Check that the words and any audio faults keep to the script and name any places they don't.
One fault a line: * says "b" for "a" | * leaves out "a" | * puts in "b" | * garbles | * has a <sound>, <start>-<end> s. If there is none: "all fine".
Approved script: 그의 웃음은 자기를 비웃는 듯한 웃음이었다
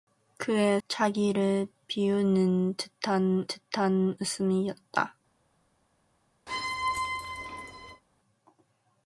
* leaves out "웃음은"
* puts in "듯한"
* has a squeak, 6.5-8.0 s